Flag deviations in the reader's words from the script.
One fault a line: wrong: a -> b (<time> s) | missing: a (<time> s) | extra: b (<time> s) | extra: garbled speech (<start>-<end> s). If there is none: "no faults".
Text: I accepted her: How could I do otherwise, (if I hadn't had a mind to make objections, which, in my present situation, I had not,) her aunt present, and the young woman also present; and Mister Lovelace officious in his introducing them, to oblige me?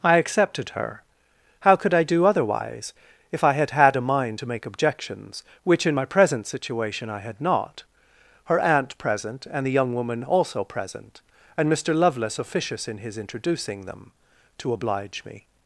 wrong: hadn't -> had (3.5 s)